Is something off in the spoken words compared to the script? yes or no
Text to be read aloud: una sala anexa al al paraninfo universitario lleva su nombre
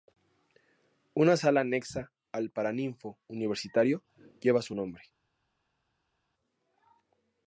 yes